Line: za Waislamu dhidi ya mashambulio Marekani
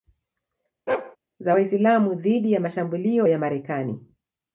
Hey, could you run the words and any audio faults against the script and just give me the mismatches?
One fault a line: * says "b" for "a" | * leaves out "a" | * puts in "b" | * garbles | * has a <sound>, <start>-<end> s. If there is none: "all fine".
* has a bark, 0.9-1.2 s
* puts in "ya"